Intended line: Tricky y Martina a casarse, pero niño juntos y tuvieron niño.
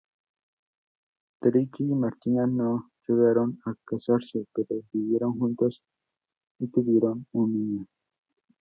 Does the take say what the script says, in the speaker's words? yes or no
no